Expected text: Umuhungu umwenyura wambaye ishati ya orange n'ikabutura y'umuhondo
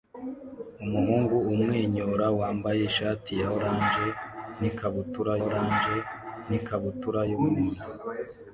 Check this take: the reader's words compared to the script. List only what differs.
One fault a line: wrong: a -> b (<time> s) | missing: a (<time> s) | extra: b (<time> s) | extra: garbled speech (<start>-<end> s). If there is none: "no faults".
extra: orange n'ikabutura (5.5 s)